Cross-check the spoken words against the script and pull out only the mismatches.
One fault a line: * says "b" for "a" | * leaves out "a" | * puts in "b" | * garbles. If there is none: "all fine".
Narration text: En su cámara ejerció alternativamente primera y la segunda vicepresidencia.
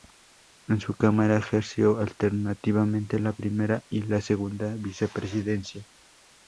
* puts in "la"